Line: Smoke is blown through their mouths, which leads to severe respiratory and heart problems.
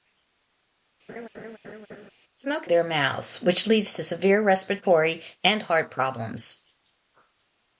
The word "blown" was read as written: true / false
false